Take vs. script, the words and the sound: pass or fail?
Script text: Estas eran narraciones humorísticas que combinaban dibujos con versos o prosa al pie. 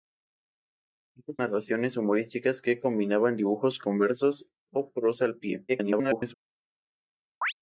fail